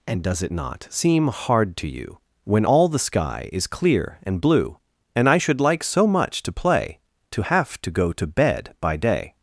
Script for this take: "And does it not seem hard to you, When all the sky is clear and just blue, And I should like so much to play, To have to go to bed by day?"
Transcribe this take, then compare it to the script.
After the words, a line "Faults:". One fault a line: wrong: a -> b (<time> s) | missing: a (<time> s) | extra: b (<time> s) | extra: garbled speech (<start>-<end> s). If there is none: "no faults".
"And does it not seem hard to you, When all the sky is clear and blue, And I should like so much to play, To have to go to bed by day?"
Faults:
missing: just (4.4 s)